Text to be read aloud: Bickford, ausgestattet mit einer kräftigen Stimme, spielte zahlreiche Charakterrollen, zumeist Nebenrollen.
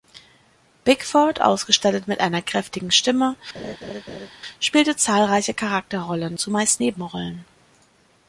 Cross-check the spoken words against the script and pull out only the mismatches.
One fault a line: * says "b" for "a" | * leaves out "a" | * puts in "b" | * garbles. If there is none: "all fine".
all fine